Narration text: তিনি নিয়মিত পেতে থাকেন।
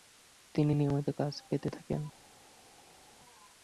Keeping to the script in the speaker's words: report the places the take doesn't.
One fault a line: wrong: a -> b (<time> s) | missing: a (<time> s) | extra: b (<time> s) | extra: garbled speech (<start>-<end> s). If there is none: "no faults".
extra: কাজ (1.2 s)